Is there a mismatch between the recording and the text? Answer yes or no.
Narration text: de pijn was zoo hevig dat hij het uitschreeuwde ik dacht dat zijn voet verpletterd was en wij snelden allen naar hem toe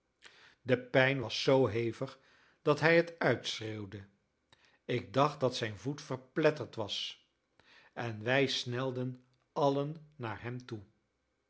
no